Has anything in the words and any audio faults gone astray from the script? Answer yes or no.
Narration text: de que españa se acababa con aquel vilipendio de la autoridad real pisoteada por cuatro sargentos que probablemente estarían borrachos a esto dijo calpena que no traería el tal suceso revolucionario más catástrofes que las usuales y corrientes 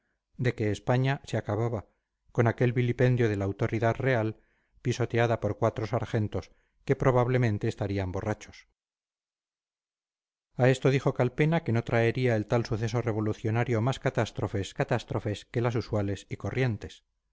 yes